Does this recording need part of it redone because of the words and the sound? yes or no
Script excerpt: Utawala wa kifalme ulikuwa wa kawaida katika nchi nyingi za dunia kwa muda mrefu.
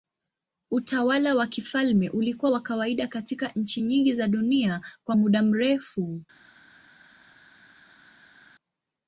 no